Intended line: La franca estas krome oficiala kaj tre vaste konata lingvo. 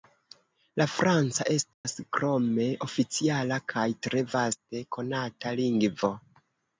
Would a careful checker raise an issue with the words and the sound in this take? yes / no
yes